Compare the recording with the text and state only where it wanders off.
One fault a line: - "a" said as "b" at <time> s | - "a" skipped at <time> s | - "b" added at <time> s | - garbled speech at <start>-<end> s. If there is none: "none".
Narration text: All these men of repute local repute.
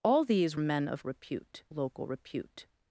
none